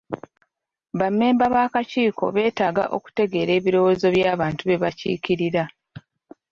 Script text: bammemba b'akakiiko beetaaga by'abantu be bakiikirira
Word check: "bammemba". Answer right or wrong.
right